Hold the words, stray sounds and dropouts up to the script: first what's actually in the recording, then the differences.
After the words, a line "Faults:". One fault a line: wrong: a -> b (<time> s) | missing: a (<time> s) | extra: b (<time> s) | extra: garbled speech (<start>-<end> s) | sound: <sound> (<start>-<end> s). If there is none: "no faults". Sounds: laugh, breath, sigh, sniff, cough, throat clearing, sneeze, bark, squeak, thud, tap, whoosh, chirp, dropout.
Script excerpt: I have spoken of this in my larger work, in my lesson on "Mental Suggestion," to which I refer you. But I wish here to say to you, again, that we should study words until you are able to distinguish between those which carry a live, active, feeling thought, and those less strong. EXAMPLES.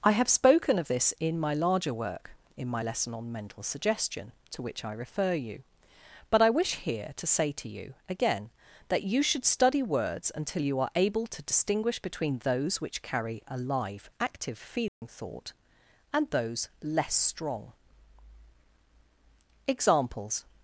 I have spoken of this in my larger work, in my lesson on "Mental Suggestion," to which I refer you. But I wish here to say to you, again, that you should study words until you are able to distinguish between those which carry a live, active, feeling thought, and those less strong. EXAMPLES.
Faults:
wrong: we -> you (9.0 s)
sound: dropout (14.9-15.0 s)